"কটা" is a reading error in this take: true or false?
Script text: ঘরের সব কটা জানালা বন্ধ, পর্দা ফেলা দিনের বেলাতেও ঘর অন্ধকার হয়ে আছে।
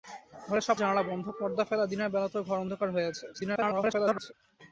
true